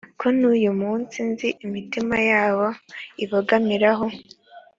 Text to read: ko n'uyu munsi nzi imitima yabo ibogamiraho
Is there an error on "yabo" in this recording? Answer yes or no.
no